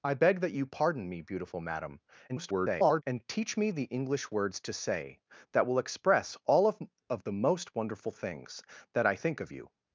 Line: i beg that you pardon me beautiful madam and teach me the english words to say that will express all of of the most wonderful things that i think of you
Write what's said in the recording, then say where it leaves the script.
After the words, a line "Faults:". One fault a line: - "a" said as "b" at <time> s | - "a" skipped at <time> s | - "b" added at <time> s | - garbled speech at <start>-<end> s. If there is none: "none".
i beg that you pardon me beautiful madam [garbled] and teach me the english words to say that will express all of of the most wonderful things that i think of you
Faults:
- garbled speech at 2.3-3.0 s